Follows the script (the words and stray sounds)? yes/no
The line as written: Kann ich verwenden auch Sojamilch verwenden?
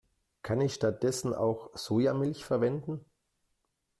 no